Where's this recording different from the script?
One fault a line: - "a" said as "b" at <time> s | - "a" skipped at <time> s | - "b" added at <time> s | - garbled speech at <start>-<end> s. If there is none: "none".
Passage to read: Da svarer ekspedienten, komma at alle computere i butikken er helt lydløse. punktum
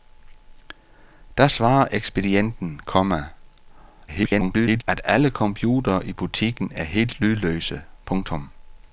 - garbled speech at 4.1-4.8 s